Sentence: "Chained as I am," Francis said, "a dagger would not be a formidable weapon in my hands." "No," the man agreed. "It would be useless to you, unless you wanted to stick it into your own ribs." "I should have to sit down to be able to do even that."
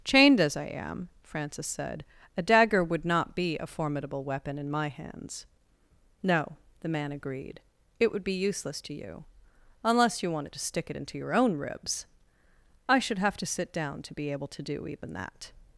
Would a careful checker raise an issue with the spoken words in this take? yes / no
no